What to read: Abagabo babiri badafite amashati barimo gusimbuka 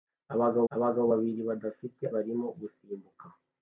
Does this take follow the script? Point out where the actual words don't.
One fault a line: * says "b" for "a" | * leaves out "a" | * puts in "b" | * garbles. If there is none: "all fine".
* puts in "abagabo"
* leaves out "amashati"